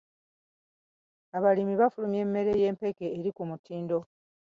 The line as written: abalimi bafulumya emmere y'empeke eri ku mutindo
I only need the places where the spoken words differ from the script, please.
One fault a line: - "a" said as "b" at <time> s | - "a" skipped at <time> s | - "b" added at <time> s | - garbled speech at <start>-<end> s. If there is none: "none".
none